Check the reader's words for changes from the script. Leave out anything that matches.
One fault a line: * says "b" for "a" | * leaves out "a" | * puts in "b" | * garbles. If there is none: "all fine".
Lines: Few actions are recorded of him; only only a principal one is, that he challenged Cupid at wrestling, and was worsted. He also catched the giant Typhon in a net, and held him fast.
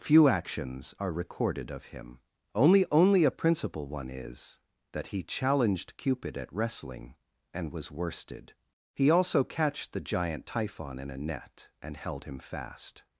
all fine